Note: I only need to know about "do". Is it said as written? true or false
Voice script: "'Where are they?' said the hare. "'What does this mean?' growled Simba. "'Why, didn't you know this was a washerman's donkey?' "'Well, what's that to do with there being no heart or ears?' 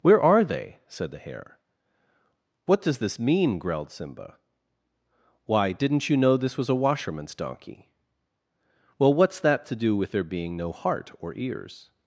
true